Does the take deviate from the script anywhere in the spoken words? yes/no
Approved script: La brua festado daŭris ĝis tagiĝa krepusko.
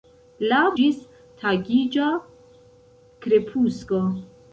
yes